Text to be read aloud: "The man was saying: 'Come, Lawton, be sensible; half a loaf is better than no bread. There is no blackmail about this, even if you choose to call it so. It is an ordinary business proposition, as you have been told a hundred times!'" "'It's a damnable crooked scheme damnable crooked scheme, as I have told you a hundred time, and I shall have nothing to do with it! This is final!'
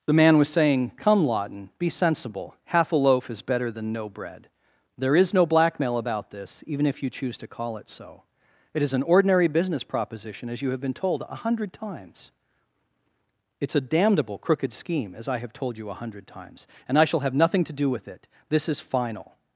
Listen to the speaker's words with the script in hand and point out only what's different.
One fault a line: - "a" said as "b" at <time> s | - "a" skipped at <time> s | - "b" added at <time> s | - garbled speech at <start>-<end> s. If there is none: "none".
- "damnable crooked scheme" skipped at 15.1 s
- "time" said as "times" at 16.2 s